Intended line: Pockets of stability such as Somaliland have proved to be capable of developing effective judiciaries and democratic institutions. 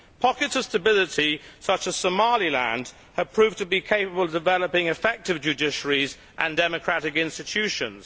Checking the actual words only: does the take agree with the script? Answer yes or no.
yes